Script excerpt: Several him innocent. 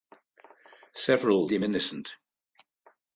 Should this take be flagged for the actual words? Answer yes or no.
no